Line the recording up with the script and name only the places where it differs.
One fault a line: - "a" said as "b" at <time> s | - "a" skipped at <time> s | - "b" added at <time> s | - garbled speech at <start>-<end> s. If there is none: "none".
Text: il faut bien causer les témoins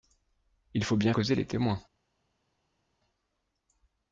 none